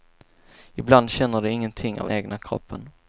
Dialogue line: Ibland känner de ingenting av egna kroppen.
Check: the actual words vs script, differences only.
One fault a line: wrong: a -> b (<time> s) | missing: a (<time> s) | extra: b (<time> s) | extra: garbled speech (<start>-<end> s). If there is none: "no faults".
no faults